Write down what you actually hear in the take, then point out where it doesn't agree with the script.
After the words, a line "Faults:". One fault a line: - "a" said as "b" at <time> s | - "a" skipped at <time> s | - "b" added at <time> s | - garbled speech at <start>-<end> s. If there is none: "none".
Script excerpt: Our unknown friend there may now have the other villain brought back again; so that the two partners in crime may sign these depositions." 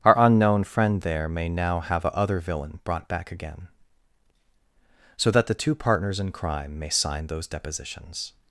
Our unknown friend there may now have a other villain brought back again; so that the two partners in crime may sign those depositions."
Faults:
- "the" said as "a" at 2.0 s
- "these" said as "those" at 7.3 s